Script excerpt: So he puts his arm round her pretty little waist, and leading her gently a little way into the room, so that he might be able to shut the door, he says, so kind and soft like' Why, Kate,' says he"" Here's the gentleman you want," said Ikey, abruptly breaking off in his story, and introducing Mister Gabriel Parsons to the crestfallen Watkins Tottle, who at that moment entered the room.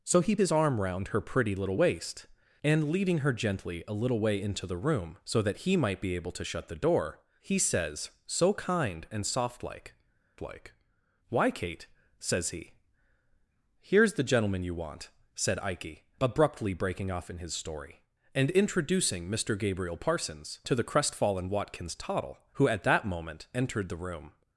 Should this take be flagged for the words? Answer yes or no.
yes